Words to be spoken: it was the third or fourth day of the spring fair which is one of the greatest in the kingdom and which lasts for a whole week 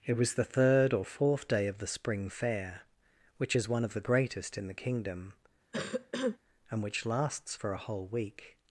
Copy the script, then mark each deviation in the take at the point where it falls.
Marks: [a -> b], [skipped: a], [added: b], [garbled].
it was the third or fourth day of the spring fair which is one of the greatest in the kingdom and which lasts for a whole week